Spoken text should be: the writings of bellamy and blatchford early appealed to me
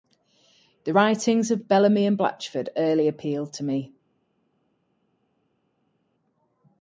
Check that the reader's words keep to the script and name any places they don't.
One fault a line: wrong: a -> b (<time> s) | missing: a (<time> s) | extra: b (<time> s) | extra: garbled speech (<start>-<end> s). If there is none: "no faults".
no faults